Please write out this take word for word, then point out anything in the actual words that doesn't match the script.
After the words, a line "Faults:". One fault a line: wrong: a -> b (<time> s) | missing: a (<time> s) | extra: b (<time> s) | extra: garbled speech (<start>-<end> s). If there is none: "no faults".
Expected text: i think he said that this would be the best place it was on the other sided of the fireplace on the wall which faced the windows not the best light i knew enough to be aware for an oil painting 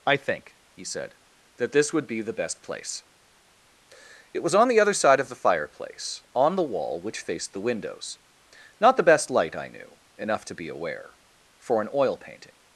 i think he said that this would be the best place it was on the other side of the fireplace on the wall which faced the windows not the best light i knew enough to be aware for an oil painting
Faults:
wrong: sided -> side (5.0 s)